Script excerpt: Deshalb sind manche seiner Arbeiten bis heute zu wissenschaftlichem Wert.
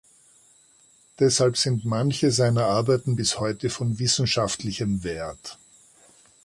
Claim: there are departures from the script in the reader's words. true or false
true